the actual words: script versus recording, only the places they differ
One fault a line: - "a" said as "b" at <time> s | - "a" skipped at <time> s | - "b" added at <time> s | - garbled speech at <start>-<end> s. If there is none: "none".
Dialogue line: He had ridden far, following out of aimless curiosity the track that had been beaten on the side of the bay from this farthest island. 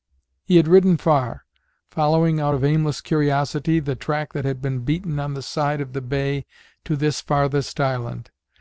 - "from" said as "to" at 6.8 s